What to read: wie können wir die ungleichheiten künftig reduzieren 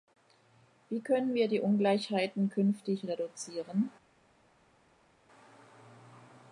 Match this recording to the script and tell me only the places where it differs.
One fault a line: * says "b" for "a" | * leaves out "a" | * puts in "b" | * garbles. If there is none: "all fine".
all fine